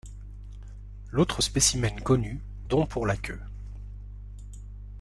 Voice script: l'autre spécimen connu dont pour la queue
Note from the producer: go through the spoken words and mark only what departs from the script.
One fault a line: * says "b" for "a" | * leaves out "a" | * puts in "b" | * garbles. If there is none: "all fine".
all fine